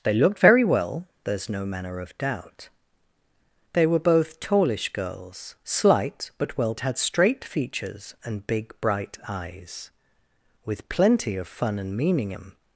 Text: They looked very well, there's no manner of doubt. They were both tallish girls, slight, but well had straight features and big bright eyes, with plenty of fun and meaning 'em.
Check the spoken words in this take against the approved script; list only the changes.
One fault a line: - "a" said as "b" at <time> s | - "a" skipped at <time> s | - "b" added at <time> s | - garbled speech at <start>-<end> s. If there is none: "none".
none